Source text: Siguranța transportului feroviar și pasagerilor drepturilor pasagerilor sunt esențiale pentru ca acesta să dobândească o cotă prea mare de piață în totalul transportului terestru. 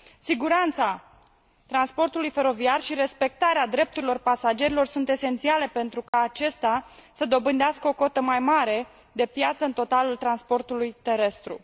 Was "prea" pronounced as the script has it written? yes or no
no